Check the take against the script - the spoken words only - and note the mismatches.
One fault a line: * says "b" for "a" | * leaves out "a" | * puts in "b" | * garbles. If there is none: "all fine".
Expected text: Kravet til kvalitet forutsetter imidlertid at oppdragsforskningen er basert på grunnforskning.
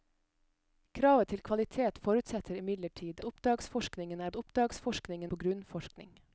* leaves out "at"
* says "oppdragsforskningen" for "basert"